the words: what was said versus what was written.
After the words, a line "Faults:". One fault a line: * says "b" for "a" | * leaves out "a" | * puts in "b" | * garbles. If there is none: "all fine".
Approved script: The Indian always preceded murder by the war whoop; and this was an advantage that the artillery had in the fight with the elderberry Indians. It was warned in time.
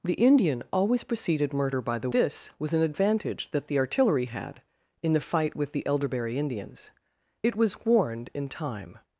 The Indian always preceded murder by the this was an advantage that the artillery had in the fight with the elderberry Indians. It was warned in time.
Faults:
* leaves out "war whoop and"